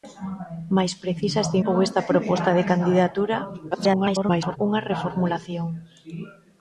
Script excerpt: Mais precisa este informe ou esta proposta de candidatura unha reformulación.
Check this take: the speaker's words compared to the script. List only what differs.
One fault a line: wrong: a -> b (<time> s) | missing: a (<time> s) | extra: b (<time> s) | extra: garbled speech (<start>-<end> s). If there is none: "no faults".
missing: informe (1.6 s)
extra: garbled speech (3.7-4.6 s)